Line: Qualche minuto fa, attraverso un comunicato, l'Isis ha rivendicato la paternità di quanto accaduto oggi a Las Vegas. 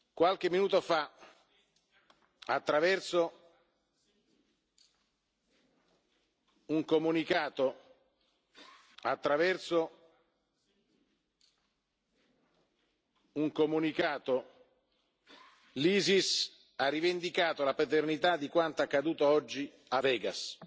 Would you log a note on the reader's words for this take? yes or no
yes